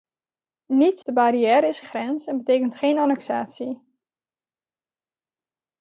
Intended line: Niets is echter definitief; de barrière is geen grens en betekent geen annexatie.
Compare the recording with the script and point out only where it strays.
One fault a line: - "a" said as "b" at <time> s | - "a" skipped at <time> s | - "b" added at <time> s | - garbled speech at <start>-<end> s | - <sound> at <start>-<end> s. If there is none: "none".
- "is echter definitief" skipped at 1.0 s
- "geen" skipped at 1.8 s